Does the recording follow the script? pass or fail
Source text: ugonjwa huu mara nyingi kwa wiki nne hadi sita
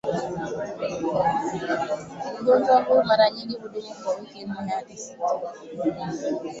fail